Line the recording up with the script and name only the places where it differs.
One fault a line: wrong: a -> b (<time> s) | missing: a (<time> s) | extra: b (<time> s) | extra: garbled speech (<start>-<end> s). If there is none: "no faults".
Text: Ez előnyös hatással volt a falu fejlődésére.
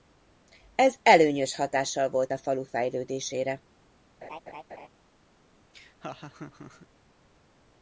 no faults